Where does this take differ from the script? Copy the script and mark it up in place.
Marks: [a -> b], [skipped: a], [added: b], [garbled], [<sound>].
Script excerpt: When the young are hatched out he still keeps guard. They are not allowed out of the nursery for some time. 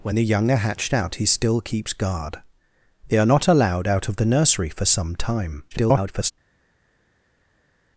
When the young are hatched out he still keeps guard. They are not allowed out of the nursery for some time. [garbled]